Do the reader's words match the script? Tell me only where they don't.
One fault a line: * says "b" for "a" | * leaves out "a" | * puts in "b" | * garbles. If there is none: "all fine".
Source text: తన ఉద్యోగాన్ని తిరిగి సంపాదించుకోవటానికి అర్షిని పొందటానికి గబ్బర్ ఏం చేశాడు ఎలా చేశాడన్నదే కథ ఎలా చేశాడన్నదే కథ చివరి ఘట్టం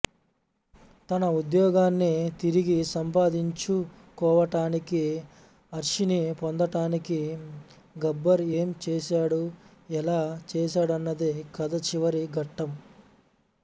* leaves out "ఎలా చేశాడన్నదే కథ"